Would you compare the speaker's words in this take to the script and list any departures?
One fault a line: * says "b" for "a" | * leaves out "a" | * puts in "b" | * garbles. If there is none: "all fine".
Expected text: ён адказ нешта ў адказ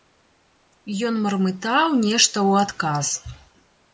* says "мармытаў" for "адказ"